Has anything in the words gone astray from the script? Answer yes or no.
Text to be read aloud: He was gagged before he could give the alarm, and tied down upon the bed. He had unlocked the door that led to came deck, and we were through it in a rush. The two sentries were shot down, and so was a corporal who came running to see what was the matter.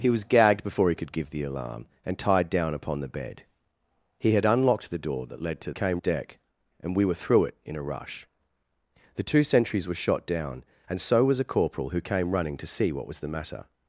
no